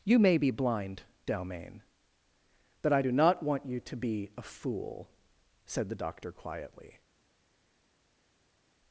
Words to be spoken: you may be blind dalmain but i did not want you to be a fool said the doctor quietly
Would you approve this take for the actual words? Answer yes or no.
no